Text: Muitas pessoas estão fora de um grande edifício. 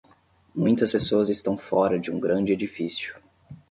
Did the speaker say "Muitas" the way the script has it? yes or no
yes